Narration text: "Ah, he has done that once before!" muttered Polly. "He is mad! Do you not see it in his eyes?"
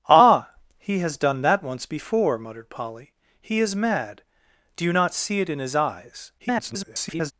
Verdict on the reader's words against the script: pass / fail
fail